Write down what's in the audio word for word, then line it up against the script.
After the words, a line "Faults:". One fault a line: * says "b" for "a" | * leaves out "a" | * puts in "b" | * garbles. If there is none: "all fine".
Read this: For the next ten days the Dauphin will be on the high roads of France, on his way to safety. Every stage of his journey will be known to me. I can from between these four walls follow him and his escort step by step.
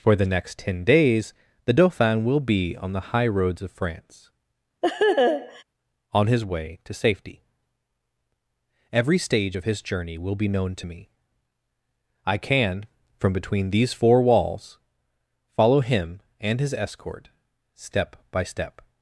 For the next ten days the Dauphin will be on the high roads of France, on his way to safety. Every stage of his journey will be known to me. I can from between these four walls follow him and his escort step by step.
Faults:
all fine